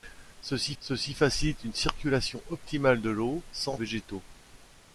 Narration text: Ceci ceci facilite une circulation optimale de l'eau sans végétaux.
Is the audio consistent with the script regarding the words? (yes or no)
yes